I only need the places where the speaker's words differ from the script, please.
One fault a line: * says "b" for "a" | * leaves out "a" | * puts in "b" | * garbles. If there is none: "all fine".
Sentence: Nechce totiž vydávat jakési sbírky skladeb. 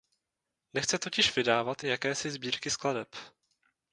all fine